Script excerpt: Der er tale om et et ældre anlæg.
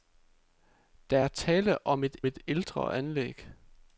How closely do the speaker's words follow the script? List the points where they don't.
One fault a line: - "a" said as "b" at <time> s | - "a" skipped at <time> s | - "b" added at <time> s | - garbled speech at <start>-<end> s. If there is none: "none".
none